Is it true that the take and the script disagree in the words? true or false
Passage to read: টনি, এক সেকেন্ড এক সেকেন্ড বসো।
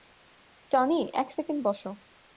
true